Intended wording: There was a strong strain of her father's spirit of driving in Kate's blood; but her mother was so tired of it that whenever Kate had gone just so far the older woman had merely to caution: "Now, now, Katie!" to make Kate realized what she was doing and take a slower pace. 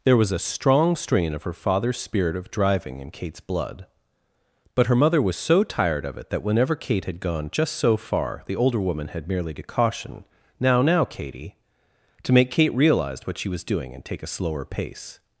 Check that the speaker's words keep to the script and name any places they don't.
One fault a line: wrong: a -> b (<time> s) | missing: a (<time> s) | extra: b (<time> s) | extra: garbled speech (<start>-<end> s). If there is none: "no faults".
wrong: realized -> realize (12.7 s)